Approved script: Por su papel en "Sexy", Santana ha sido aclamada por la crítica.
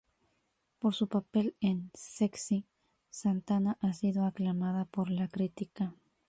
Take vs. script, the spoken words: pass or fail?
pass